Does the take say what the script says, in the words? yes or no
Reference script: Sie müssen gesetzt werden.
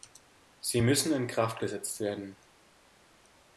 no